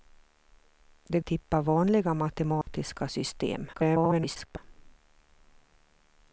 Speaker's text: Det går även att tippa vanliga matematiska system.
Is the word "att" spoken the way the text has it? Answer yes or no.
no